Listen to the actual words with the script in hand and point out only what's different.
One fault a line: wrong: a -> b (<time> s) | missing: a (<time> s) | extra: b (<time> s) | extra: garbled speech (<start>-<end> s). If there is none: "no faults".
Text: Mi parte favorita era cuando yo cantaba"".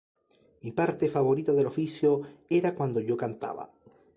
extra: del oficio (1.5 s)